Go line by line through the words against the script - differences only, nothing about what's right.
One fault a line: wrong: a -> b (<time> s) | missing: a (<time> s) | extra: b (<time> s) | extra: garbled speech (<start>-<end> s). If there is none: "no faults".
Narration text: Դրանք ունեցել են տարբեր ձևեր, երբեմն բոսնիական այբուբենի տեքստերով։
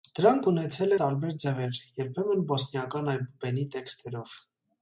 missing: են (0.9 s)